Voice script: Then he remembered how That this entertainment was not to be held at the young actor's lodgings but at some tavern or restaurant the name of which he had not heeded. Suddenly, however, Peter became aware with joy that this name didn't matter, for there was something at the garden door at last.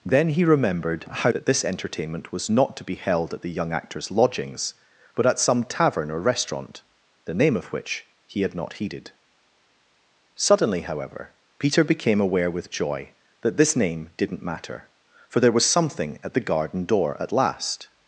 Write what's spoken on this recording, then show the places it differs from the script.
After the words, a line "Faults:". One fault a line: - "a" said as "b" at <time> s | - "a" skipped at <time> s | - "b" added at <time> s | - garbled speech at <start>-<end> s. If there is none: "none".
Then he remembered how That this entertainment was not to be held at the young actor's lodgings but at some tavern or restaurant the name of which he had not heeded. Suddenly, however, Peter became aware with joy that this name didn't matter, for there was something at the garden door at last.
Faults:
none